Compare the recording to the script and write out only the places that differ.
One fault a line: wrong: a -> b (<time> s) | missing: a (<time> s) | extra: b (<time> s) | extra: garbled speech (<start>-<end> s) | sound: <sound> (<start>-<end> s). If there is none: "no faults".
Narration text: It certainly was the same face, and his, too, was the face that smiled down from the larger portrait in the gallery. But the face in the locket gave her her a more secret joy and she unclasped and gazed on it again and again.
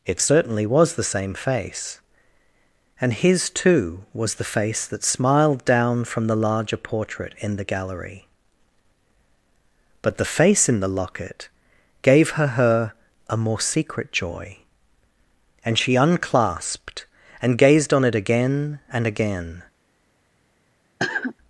sound: cough (21.0-21.3 s)